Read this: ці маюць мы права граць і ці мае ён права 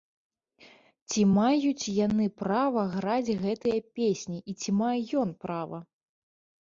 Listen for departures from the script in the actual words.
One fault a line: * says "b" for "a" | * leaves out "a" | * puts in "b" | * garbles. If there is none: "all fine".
* says "яны" for "мы"
* puts in "гэтыя песні"